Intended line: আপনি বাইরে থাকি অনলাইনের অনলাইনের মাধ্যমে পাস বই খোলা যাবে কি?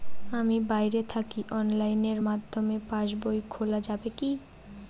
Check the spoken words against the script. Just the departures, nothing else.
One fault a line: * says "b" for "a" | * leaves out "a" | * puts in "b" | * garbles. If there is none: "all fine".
* says "আমি" for "আপনি"
* leaves out "অনলাইনের"